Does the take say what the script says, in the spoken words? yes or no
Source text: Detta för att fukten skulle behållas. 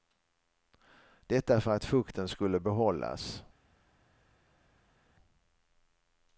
yes